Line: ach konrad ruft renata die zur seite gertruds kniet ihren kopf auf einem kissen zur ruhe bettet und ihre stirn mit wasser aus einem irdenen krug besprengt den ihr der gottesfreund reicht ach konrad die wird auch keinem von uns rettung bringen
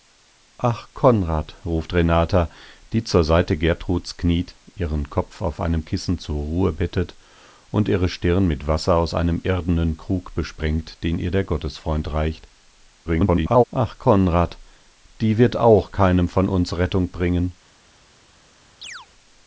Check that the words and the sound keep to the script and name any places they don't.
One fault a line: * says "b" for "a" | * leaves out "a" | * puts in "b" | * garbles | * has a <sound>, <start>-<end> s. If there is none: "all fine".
* garbles
* has a chirp, 18.8-19.1 s